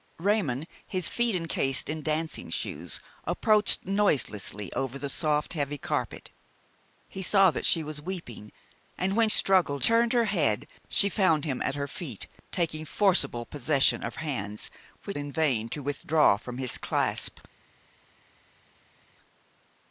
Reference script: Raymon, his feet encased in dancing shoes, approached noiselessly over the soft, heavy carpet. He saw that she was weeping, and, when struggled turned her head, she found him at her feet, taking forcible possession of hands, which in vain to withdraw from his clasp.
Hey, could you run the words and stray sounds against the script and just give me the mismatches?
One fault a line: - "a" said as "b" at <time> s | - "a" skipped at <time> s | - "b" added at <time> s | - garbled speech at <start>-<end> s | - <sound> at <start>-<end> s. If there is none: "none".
none